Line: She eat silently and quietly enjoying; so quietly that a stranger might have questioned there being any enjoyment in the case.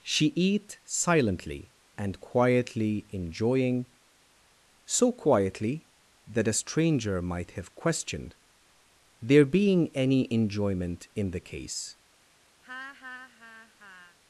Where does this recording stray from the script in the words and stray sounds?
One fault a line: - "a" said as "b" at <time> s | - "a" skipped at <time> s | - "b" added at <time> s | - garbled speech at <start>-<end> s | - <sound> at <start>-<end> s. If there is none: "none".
- laugh at 12.6-14.2 s